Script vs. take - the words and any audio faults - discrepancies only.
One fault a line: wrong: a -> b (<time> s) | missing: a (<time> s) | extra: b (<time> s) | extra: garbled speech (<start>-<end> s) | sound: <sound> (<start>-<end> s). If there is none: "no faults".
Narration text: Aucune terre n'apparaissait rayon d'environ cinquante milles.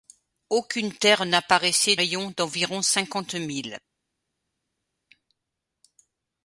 no faults